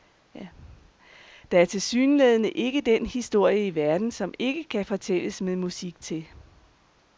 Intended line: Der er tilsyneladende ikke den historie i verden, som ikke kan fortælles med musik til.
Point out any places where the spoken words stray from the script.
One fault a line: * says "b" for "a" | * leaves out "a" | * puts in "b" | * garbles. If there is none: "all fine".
all fine